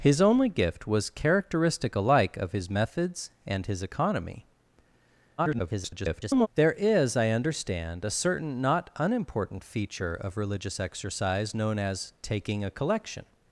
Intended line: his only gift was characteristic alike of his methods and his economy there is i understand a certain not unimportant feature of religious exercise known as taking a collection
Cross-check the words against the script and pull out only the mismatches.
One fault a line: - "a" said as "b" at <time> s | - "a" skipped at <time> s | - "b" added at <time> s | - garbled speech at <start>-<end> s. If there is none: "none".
- garbled speech at 5.4-6.5 s